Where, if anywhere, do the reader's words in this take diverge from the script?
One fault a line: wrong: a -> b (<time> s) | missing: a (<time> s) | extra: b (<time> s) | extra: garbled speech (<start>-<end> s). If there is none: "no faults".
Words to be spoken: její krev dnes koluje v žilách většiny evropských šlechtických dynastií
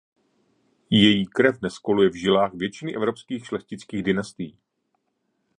no faults